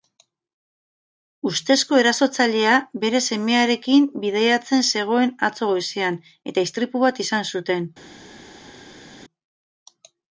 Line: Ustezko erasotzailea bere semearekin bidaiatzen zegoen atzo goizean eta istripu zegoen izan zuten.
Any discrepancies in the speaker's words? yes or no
yes